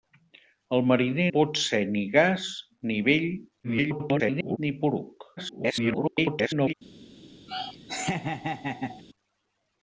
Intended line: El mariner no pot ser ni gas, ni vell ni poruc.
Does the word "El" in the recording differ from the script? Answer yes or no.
no